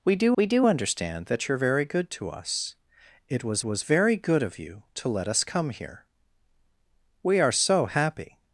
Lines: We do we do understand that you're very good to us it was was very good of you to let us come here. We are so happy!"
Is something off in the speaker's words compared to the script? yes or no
no